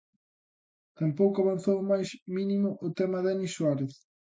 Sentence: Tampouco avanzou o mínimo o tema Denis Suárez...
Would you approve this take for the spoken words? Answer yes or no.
no